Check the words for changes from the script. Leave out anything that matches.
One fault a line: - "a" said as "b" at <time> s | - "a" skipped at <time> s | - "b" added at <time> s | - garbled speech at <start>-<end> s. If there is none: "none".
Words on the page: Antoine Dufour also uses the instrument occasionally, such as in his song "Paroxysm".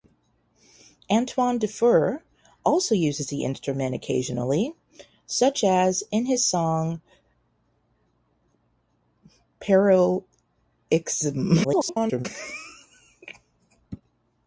- garbled speech at 11.6-12.3 s